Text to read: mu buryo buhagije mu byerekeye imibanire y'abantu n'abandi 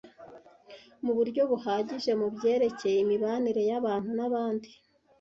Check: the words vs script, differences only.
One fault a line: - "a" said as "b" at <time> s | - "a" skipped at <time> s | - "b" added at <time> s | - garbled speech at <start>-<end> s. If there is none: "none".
none